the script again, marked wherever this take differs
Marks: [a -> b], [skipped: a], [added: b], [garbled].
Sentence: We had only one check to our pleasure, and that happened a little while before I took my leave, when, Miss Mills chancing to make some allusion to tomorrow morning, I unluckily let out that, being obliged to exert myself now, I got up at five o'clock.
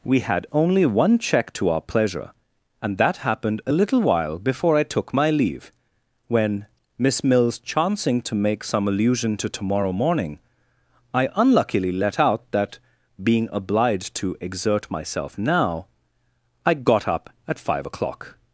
We had only one check to our pleasure, and that happened a little while before I took my leave, when, Miss Mills chancing to make some allusion to tomorrow morning, I unluckily let out that, being obliged to exert myself now, I got up at five o'clock.